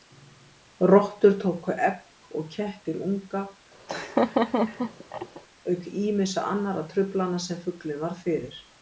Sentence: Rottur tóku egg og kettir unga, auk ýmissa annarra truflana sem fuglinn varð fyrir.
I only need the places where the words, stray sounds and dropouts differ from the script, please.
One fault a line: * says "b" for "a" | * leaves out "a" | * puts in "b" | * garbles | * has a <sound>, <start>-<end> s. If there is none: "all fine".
* has a laugh, 3.9-5.4 s